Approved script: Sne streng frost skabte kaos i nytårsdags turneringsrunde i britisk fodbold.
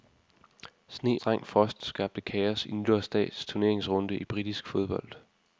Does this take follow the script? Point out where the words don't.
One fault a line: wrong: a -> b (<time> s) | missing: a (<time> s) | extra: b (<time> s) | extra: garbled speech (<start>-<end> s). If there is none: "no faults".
no faults